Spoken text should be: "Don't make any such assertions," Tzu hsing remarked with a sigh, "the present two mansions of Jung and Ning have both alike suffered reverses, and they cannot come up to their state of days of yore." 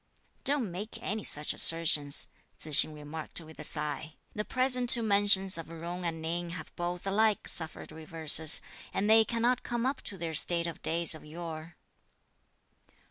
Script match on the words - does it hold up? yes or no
yes